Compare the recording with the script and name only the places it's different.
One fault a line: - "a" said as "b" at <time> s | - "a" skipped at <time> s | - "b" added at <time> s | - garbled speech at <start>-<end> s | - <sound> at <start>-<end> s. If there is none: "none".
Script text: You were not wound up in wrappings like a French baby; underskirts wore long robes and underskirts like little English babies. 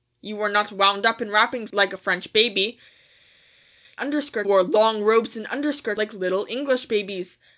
none